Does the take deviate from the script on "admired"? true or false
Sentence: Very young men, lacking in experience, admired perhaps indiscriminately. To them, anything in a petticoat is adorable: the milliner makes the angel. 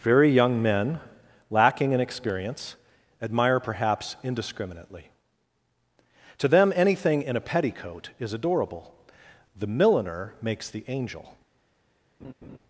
true